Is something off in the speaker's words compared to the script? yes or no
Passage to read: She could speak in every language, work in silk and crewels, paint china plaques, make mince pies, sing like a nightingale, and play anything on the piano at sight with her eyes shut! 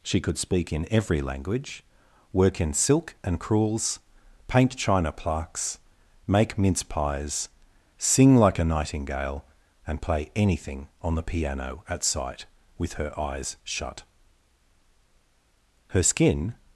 yes